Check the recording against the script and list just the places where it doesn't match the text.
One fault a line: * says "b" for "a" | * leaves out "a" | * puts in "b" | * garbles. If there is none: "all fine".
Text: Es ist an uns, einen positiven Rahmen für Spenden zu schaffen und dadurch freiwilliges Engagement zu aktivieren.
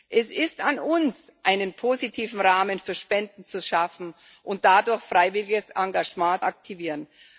* leaves out "zu"